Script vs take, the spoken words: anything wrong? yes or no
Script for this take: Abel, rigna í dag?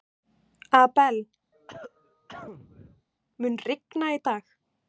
yes